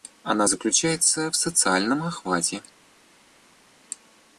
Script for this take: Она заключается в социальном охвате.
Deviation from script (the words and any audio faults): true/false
false